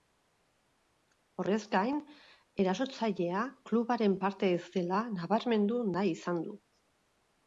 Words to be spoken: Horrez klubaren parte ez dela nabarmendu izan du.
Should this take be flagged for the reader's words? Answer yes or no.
yes